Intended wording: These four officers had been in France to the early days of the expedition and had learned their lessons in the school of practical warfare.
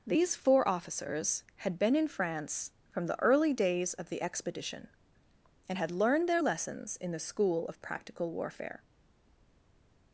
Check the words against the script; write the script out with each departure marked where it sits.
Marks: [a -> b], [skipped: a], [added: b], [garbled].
These four officers had been in France [to -> from] the early days of the expedition and had learned their lessons in the school of practical warfare.